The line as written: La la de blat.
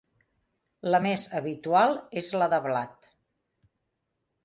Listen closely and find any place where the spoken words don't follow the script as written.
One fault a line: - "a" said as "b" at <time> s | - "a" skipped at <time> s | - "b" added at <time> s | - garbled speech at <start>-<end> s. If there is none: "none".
- "més habitual és" added at 1.1 s